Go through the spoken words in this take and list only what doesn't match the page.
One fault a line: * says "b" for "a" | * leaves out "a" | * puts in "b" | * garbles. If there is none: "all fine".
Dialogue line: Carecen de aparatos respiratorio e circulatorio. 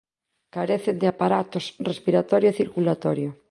all fine